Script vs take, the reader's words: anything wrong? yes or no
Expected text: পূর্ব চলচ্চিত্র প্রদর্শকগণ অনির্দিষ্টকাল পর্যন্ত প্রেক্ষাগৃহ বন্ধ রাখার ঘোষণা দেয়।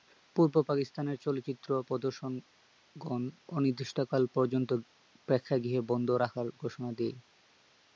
yes